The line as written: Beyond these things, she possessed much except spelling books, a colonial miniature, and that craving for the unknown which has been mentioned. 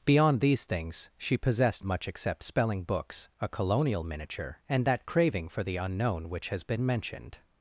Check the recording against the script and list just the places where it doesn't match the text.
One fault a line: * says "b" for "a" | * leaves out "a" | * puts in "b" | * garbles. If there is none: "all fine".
all fine